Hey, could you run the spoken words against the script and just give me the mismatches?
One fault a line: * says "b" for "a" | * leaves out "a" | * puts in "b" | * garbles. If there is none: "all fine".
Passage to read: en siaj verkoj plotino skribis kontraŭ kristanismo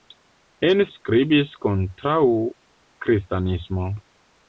* leaves out "siaj verkoj plotino"